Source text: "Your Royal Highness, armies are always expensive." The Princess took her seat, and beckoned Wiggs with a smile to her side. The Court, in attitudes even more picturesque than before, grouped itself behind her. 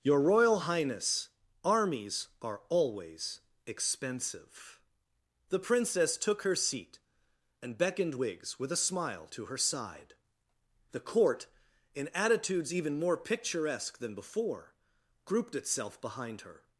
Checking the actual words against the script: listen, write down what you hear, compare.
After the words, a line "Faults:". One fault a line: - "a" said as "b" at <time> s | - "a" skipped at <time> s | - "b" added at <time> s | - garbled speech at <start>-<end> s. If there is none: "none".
"Your Royal Highness, armies are always expensive." The Princess took her seat, and beckoned Wiggs with a smile to her side. The Court, in attitudes even more picturesque than before, grouped itself behind her.
Faults:
none